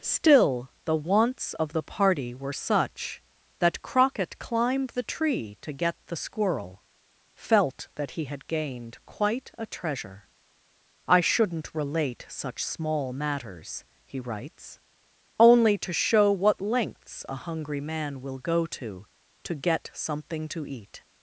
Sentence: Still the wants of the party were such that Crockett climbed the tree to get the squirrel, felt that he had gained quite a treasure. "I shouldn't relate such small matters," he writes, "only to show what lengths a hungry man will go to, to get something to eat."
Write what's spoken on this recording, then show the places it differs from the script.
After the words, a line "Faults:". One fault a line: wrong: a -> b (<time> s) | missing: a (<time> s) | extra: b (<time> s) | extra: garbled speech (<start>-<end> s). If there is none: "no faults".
Still the wants of the party were such that Crockett climbed the tree to get the squirrel, felt that he had gained quite a treasure. "I shouldn't relate such small matters," he writes, "only to show what lengths a hungry man will go to, to get something to eat."
Faults:
no faults